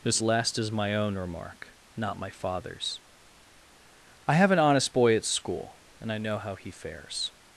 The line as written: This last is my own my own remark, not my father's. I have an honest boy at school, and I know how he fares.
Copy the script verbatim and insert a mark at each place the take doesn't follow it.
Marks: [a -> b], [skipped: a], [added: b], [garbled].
This last is my own [skipped: my own] remark, not my father's. I have an honest boy at school, and I know how he fares.